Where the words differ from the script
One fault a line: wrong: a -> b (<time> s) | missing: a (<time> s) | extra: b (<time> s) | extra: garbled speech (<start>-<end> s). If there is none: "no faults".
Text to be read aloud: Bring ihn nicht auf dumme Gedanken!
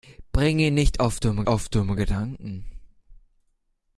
extra: auf dumme (1.5 s)